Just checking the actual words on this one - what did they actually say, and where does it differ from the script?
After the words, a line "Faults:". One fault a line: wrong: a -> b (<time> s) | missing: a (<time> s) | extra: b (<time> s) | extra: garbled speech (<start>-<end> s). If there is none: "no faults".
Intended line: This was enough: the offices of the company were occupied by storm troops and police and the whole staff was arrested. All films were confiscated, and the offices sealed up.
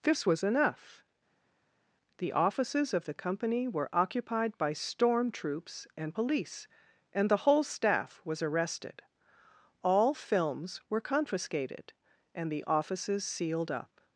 This was enough: the offices of the company were occupied by storm troops and police and the whole staff was arrested. All films were confiscated, and the offices sealed up.
Faults:
no faults